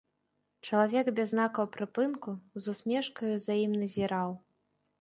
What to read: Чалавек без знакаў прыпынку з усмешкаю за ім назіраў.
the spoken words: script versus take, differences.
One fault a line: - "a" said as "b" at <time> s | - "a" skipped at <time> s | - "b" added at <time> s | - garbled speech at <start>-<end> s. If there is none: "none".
none